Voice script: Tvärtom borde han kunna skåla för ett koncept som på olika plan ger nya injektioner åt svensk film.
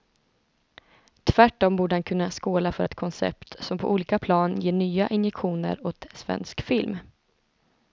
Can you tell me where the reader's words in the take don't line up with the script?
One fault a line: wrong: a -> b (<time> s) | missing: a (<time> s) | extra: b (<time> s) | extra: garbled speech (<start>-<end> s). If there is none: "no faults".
no faults